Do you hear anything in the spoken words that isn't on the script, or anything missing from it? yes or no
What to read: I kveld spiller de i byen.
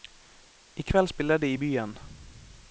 no